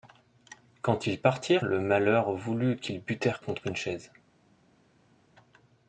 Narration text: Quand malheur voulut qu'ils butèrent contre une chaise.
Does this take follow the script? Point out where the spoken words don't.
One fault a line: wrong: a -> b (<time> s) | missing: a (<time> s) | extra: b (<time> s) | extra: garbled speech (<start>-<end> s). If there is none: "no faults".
extra: ils partirent le (1.1 s)